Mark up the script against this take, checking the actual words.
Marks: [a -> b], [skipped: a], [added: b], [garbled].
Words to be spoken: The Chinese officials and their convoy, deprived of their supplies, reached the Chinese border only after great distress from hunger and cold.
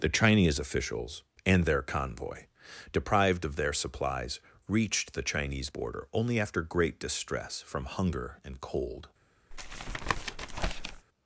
The Chinese officials and their convoy, deprived of their supplies, reached the Chinese border only after great distress from hunger and cold.